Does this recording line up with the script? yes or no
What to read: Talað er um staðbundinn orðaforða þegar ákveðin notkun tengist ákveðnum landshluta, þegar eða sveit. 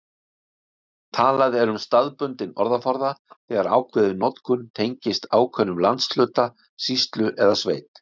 no